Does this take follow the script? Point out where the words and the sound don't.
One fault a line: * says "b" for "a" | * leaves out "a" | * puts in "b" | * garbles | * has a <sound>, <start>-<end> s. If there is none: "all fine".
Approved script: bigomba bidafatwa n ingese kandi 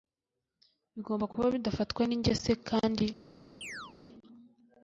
* puts in "kuba"
* has a chirp, 3.6-3.9 s